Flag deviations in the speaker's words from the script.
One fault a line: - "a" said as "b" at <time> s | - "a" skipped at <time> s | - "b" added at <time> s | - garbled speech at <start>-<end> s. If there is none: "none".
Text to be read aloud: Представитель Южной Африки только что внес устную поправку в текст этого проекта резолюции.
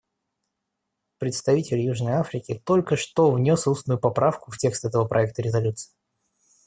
none